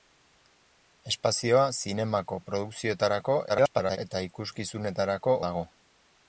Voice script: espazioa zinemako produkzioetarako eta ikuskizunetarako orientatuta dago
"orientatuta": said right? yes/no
no